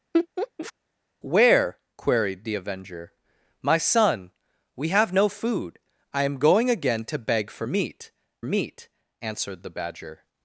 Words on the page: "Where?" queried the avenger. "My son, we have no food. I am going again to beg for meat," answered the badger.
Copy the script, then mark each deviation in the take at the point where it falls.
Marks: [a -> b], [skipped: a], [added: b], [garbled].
"Where?" queried the avenger. "My son, we have no food. I am going again to beg for meat," [added: meat] answered the badger.